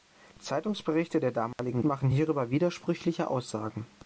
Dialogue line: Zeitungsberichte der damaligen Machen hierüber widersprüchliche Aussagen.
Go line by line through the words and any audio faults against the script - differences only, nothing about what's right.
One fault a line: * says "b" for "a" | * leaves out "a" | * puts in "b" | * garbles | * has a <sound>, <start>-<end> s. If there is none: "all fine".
* has a dropout, 1.5-1.6 s